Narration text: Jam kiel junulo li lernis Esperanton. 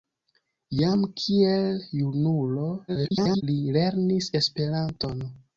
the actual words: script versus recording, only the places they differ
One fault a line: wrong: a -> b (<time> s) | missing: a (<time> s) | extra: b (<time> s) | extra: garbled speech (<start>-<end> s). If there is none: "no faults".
extra: garbled speech (2.9-3.4 s)